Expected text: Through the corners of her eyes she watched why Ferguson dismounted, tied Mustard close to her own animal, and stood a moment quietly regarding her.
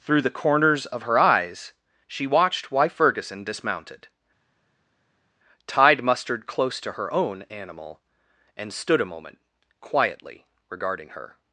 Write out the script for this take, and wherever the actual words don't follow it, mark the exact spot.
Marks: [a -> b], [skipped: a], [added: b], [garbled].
Through the corners of her eyes she watched why Ferguson dismounted, tied Mustard close to her own animal, and stood a moment quietly regarding her.